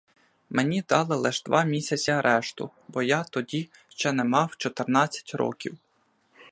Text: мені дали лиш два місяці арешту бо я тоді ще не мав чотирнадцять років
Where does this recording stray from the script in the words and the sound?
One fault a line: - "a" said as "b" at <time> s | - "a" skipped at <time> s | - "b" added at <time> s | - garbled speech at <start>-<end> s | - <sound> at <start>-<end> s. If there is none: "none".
none